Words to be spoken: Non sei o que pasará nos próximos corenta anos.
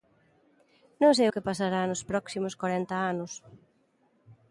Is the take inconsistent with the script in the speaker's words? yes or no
no